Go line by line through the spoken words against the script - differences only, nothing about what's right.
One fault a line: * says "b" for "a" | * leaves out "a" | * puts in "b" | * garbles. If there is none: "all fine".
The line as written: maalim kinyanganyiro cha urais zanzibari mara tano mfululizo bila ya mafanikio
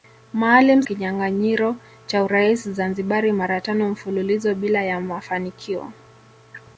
all fine